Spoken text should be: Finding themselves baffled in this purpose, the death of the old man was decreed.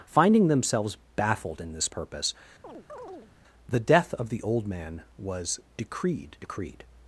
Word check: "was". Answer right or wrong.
right